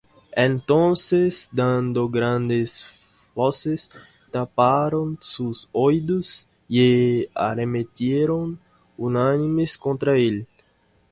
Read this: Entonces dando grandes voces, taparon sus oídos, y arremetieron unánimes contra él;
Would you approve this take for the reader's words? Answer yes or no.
yes